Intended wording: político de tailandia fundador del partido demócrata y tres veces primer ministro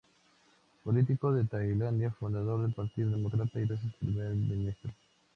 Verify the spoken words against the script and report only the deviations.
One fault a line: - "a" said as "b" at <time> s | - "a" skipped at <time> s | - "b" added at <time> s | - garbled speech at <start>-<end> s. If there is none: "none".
- "tres" skipped at 3.7 s